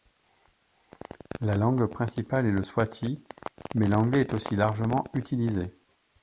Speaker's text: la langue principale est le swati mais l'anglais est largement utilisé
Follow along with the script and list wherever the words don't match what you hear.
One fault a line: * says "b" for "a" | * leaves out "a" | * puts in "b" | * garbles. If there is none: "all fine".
* puts in "aussi"